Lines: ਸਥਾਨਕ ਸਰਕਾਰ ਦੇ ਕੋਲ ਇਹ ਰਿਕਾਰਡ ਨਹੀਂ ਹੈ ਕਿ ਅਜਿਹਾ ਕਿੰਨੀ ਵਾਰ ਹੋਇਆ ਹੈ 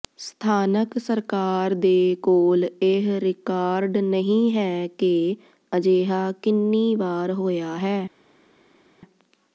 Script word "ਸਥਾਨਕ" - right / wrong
right